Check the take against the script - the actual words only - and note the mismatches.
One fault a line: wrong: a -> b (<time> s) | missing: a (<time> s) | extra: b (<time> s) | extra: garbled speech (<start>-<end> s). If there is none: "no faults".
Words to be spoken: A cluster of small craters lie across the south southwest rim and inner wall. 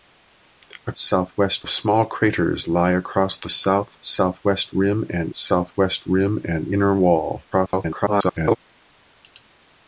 wrong: cluster -> southwest (0.9 s)
extra: southwest rim and (5.3 s)
extra: garbled speech (7.5-8.6 s)